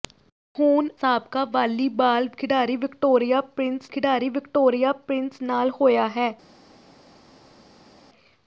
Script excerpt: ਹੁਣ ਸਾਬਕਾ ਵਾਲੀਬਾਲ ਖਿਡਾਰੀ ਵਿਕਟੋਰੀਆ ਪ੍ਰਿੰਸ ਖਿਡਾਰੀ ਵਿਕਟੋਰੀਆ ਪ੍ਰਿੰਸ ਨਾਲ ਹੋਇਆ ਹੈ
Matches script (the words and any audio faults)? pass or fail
pass